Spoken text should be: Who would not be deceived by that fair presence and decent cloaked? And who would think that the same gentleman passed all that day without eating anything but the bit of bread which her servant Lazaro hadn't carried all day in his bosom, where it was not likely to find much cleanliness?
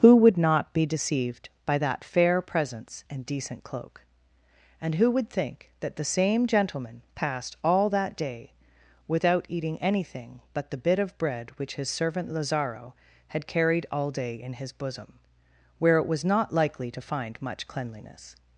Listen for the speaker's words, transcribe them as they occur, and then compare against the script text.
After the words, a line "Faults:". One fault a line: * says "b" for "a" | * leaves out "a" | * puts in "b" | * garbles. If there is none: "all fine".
Who would not be deceived by that fair presence and decent cloak? And who would think that the same gentleman passed all that day without eating anything but the bit of bread which his servant Lazaro had carried all day in his bosom, where it was not likely to find much cleanliness?
Faults:
* says "cloak" for "cloaked"
* says "his" for "her"
* says "had" for "hadn't"